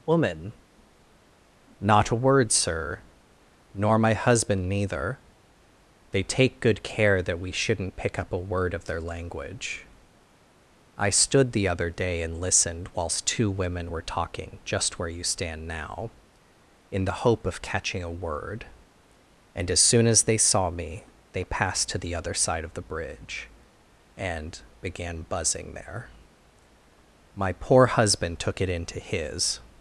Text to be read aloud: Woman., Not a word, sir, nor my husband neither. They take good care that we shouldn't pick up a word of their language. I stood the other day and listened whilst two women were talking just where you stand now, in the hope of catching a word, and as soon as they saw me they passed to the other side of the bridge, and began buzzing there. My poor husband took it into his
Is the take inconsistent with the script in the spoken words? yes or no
no